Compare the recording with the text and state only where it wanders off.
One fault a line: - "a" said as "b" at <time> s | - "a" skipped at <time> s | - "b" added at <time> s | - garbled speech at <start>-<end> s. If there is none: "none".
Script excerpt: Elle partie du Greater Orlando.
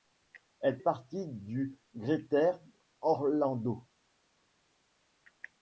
none